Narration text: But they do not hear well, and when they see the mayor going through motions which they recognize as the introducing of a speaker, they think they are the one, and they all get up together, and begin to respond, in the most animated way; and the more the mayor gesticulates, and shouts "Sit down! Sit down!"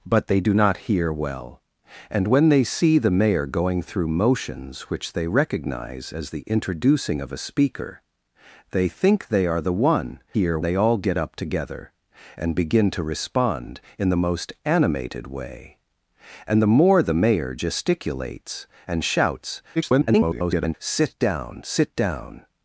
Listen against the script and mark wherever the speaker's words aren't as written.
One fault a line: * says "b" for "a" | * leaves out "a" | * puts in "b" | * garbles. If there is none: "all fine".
* says "hear" for "and"
* garbles